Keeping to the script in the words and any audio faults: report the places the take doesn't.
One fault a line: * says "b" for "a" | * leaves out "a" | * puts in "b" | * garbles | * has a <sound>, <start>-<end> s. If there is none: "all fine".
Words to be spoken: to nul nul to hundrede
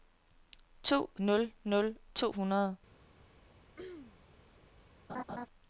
* has a throat clearing, 3.8-4.2 s
* has a laugh, 5.1-5.5 s